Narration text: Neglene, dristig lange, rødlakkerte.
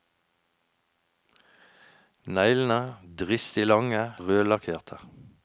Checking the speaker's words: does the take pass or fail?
pass